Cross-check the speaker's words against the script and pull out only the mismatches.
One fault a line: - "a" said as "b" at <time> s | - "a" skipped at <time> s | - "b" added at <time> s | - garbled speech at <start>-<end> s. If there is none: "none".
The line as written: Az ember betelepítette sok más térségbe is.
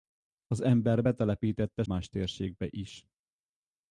- "sok" skipped at 1.8 s